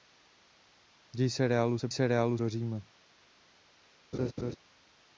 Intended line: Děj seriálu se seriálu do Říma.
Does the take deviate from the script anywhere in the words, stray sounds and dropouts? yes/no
yes